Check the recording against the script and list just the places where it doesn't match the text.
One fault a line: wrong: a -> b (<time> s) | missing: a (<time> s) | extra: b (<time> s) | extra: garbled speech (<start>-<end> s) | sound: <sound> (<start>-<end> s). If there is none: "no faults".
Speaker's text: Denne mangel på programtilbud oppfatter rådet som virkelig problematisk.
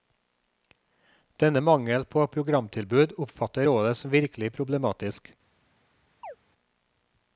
sound: chirp (6.2-6.4 s)